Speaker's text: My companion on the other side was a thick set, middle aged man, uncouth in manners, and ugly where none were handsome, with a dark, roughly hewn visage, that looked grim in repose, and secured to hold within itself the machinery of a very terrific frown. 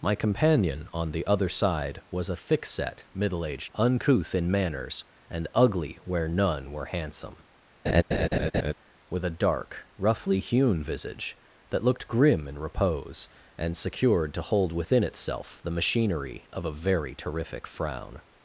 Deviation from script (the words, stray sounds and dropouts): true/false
true